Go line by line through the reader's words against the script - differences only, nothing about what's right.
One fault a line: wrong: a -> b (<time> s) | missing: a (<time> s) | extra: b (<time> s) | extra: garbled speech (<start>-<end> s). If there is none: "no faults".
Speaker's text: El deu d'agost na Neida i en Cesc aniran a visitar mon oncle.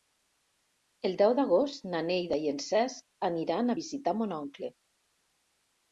no faults